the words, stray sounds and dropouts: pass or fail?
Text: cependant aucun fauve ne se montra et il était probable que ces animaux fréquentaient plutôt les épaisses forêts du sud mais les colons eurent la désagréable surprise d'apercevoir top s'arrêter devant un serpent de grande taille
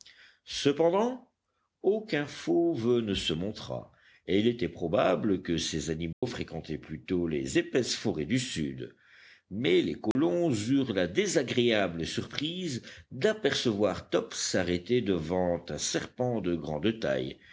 fail